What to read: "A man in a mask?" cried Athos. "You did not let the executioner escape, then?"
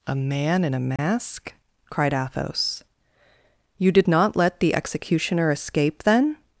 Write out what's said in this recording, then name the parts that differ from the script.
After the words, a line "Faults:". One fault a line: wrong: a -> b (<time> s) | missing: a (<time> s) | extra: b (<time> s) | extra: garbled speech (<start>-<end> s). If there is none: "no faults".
"A man in a mask?" cried Athos. "You did not let the executioner escape, then?"
Faults:
no faults